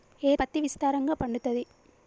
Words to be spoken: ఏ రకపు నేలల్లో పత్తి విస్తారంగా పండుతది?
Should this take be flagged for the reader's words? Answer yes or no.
yes